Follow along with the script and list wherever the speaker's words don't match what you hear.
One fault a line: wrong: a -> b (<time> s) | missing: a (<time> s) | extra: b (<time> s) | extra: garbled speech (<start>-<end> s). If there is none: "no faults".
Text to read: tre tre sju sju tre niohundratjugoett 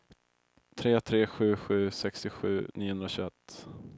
wrong: tre -> sextiosju (1.9 s)